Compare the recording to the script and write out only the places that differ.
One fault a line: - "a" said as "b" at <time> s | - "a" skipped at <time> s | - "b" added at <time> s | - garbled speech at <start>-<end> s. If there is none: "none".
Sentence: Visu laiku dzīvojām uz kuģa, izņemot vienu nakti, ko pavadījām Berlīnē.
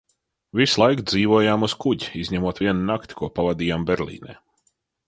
none